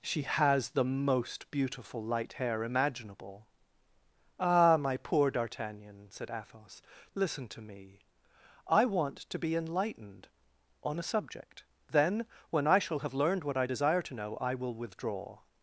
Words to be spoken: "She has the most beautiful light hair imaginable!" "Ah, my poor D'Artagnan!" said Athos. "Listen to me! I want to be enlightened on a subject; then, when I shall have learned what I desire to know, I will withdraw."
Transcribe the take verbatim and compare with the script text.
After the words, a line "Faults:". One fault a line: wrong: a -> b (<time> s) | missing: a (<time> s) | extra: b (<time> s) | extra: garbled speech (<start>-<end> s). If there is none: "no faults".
"She has the most beautiful light hair imaginable!" "Ah, my poor D'Artagnan!" said Athos. "Listen to me! I want to be enlightened on a subject; then, when I shall have learned what I desire to know, I will withdraw."
Faults:
no faults